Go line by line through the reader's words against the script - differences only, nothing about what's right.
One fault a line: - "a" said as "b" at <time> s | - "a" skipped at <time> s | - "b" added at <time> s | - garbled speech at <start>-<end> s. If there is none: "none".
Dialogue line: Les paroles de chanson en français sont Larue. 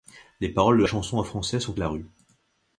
none